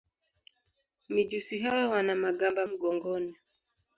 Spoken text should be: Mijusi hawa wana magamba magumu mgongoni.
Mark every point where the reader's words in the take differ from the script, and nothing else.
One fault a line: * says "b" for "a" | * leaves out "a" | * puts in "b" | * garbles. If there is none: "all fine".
* leaves out "magumu"